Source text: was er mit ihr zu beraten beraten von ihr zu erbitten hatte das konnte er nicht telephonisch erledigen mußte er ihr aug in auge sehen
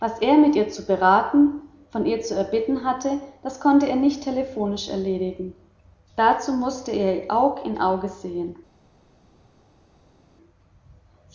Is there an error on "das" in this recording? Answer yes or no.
no